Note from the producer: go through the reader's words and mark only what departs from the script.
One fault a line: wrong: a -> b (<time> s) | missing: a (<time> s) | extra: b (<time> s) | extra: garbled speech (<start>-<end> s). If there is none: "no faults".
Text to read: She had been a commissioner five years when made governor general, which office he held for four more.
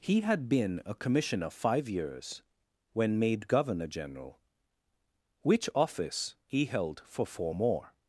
wrong: She -> He (0.0 s)